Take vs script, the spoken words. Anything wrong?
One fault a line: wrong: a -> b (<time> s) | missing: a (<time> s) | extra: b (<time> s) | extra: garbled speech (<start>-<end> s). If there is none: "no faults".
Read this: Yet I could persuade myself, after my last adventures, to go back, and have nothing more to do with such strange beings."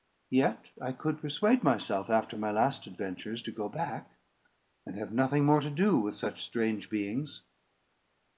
no faults